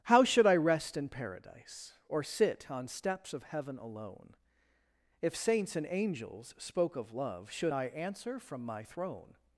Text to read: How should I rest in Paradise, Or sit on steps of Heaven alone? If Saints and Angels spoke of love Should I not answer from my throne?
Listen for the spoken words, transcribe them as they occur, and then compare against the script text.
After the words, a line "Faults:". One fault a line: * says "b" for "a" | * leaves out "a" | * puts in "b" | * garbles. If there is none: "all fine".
How should I rest in Paradise, Or sit on steps of Heaven alone? If Saints and Angels spoke of love Should I answer from my throne?
Faults:
* leaves out "not"